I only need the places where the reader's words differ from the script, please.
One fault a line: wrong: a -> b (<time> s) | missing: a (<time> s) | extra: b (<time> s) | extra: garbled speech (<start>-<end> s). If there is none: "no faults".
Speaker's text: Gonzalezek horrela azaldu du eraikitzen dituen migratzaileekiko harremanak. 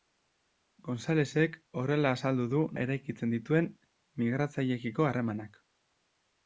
no faults